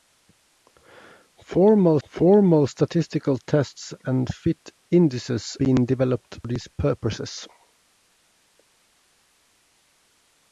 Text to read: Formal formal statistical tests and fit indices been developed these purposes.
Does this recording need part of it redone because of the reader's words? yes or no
no